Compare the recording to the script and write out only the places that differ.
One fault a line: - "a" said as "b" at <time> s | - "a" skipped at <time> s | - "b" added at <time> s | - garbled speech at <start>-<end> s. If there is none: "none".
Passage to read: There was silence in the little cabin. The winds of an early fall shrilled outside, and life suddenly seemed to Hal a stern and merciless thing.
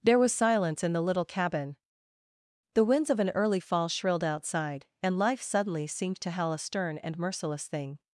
none